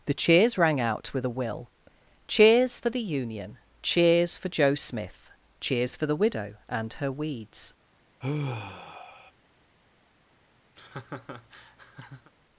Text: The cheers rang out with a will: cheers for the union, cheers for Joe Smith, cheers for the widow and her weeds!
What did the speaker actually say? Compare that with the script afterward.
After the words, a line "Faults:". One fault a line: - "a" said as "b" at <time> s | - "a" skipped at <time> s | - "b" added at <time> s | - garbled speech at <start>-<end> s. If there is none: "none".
The cheers rang out with a will: cheers for the union, cheers for Joe Smith, cheers for the widow and her weeds!
Faults:
none